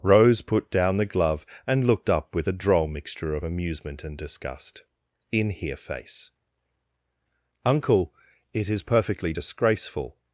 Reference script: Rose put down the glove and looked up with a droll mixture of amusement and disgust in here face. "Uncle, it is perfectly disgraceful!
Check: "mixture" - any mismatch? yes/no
no